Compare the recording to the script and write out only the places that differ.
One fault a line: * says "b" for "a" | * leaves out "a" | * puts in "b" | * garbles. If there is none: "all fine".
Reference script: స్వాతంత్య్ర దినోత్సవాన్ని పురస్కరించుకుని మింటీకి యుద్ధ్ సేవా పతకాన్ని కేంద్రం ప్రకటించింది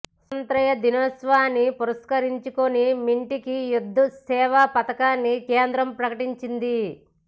all fine